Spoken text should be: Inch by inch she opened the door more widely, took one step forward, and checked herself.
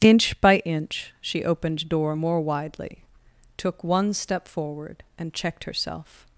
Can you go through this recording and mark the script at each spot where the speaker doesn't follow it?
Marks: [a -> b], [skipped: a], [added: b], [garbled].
Inch by inch she opened [skipped: the] door more widely, took one step forward, and checked herself.